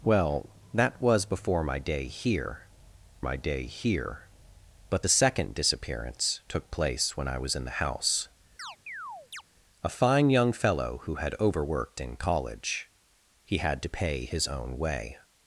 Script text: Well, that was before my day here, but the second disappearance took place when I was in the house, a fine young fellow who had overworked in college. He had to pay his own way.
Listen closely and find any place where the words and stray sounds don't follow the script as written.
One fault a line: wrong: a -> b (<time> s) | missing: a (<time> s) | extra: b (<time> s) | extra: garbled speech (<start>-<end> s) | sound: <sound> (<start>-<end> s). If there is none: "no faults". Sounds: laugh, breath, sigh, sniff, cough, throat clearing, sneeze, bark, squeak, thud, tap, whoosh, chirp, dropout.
extra: my day here (3.2 s)
sound: chirp (8.6-9.4 s)